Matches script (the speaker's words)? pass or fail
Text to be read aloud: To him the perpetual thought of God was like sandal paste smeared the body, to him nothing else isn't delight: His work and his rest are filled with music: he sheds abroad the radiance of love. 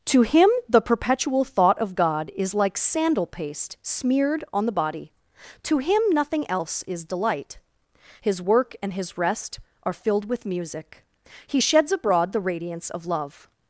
fail